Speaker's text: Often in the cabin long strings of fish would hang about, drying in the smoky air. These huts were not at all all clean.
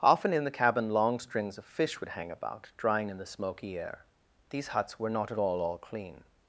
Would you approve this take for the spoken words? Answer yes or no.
yes